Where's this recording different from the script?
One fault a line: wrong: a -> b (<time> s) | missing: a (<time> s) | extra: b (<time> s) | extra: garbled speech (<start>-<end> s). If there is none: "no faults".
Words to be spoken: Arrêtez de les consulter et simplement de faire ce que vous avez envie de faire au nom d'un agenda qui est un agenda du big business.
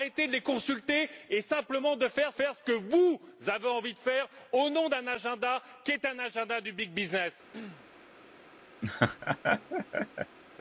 extra: faire (2.3 s)